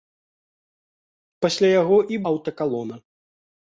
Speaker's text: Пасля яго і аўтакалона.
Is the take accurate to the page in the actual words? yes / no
yes